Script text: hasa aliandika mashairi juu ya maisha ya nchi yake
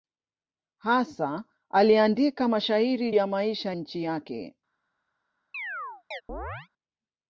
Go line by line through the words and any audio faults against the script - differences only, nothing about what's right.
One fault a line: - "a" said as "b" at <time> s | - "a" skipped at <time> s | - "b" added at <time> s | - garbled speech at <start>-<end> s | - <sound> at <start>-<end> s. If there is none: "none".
- "juu" skipped at 3.1 s
- "ya" skipped at 3.7 s
- chirp at 5.5-6.7 s